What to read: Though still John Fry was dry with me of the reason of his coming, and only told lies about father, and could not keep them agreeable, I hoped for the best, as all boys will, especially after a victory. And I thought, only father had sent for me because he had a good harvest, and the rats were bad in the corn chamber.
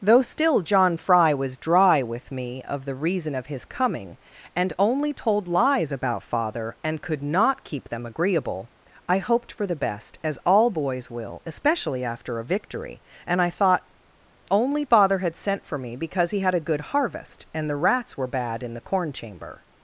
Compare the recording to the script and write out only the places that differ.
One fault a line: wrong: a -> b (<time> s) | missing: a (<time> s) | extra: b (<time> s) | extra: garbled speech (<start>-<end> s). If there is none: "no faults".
no faults